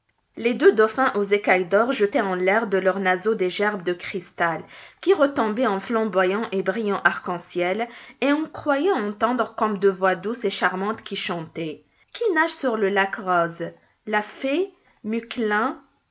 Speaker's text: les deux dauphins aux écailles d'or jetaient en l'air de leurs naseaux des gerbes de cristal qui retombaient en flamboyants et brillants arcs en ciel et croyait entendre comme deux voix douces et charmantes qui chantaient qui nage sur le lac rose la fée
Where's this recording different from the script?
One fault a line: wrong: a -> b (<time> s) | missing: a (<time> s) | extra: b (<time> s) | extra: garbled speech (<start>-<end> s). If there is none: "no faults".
extra: on (8.3 s)